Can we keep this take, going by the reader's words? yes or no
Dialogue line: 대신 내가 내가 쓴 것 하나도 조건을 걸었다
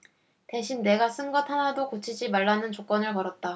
no